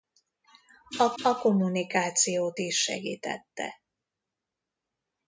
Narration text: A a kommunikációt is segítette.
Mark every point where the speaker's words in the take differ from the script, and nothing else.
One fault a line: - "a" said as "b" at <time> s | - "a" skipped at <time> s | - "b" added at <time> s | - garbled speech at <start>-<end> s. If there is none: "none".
none